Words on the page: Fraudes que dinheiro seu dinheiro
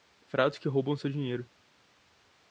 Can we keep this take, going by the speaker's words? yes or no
no